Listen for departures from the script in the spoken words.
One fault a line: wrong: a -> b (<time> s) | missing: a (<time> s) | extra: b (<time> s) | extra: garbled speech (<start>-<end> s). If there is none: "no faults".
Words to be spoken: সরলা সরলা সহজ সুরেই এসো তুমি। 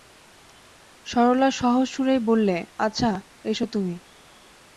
missing: সরলা (1.5 s)
extra: বললে আচ্ছা (2.2 s)